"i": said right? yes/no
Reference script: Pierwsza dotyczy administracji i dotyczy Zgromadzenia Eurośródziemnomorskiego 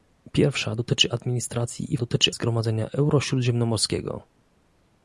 yes